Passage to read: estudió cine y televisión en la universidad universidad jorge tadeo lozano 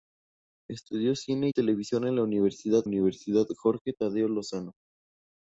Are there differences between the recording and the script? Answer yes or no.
no